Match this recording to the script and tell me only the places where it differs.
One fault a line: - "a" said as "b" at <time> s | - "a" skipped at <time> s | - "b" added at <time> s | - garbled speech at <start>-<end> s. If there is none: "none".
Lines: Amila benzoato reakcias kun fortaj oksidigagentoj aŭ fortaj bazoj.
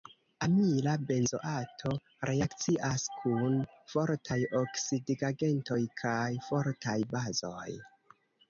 - "aŭ" said as "kaj" at 6.0 s